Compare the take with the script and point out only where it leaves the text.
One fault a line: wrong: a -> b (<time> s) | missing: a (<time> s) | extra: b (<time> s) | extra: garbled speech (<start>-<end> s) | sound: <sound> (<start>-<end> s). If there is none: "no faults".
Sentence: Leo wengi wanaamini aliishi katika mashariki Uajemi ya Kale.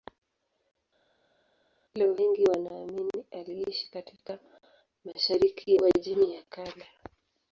no faults